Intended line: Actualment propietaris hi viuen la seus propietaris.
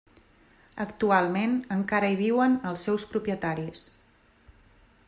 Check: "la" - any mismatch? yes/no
yes